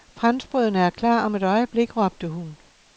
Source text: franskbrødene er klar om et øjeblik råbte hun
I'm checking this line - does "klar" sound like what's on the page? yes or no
yes